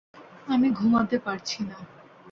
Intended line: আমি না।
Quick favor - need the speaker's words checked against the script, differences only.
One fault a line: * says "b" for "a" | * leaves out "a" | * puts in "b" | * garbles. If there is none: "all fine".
* puts in "ঘুমাতে পারছি"